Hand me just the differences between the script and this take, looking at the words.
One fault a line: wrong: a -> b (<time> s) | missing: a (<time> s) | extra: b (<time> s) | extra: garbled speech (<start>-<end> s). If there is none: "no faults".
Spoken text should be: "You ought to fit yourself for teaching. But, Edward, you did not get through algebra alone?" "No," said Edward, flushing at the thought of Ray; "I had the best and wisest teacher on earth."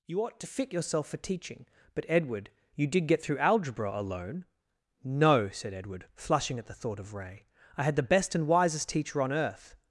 missing: not (3.1 s)